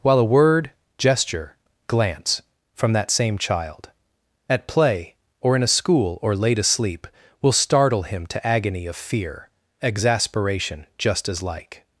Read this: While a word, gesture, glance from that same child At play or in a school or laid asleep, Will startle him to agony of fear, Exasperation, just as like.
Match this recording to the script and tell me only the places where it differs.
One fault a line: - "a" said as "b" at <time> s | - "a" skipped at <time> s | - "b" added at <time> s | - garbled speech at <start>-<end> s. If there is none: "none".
none